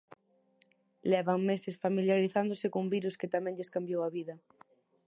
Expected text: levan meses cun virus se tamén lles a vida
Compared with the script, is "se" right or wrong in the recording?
wrong